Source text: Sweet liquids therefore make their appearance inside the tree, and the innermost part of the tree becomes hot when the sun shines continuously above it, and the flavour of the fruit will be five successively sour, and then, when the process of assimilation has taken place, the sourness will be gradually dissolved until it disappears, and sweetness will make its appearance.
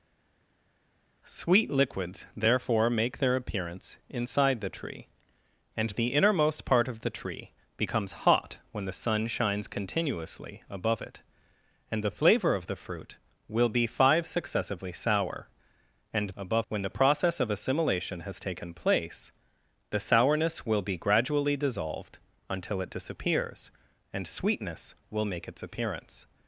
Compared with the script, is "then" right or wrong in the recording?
wrong